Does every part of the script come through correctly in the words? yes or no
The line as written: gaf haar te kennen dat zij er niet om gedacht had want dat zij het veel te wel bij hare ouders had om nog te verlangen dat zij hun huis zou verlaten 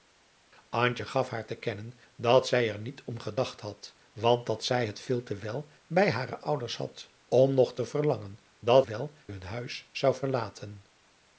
no